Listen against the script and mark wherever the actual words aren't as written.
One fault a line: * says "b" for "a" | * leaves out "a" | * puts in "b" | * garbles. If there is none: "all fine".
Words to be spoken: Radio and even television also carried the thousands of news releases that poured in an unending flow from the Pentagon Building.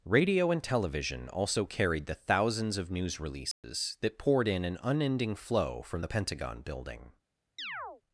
* leaves out "even"